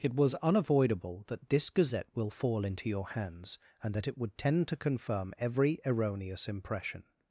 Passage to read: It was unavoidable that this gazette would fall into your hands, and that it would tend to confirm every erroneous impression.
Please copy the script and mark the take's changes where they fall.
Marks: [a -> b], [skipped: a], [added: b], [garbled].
It was unavoidable that this gazette [would -> will] fall into your hands, and that it would tend to confirm every erroneous impression.